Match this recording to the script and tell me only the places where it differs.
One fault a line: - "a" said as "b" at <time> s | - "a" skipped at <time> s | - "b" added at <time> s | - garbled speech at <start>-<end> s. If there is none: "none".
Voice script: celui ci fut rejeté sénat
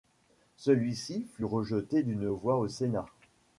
- "d'une voix au" added at 2.0 s